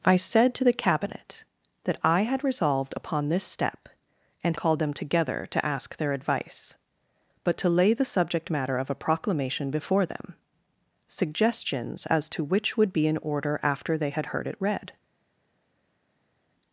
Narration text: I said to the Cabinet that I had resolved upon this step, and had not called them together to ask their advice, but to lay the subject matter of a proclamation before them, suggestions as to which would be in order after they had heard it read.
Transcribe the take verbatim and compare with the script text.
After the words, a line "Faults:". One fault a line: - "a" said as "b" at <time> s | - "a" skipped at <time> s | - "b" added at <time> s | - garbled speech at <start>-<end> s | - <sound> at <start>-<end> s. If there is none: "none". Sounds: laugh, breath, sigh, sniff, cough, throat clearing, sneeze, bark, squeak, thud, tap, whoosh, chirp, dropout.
I said to the Cabinet that I had resolved upon this step, and called them together to ask their advice, but to lay the subject matter of a proclamation before them, suggestions as to which would be in order after they had heard it read.
Faults:
- "had not" skipped at 4.6 s